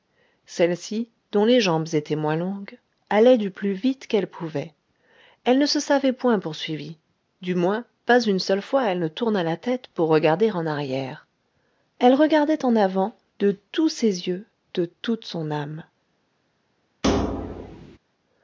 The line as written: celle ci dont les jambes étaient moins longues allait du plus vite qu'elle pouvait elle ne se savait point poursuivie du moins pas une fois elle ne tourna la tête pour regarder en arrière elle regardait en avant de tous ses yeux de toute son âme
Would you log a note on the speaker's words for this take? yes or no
yes